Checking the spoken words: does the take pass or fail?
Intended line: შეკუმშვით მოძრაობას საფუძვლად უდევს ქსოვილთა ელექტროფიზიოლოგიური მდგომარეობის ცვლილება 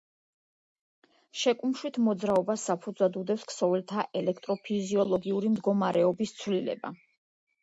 pass